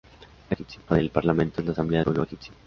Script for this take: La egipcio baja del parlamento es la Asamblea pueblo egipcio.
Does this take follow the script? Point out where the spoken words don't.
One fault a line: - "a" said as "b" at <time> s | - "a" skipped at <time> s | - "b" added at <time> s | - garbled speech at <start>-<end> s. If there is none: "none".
none